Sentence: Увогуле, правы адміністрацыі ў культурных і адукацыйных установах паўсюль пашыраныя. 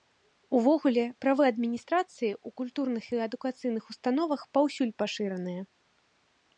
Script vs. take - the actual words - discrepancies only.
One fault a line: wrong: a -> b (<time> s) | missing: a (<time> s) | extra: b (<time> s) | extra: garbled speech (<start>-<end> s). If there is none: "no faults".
no faults